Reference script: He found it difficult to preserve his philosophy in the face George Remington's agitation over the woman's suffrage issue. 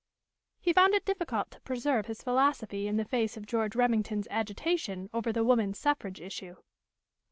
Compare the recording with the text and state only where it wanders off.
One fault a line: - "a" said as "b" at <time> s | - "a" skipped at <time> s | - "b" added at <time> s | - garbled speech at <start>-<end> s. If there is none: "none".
- "of" added at 3.4 s